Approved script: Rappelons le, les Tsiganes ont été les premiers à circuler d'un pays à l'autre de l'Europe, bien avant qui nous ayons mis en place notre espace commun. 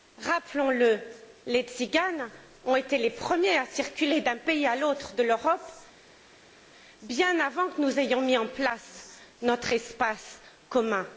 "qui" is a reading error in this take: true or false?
true